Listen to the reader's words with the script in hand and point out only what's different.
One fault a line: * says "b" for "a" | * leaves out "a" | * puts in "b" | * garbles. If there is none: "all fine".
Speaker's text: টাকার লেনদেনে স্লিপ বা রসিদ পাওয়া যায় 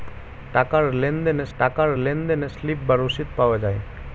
* puts in "টাকার লেনদেনে"